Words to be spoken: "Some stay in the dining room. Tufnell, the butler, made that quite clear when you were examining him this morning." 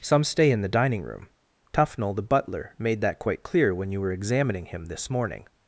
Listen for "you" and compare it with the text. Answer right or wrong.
right